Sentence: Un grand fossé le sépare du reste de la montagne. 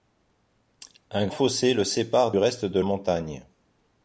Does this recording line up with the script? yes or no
no